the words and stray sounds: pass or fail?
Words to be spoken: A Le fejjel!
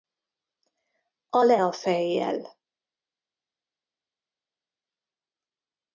fail